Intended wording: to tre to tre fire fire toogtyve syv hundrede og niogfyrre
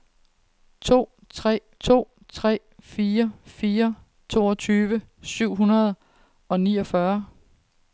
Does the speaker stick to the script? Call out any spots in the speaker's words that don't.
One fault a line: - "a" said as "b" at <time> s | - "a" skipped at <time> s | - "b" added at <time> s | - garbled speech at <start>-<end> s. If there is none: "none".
none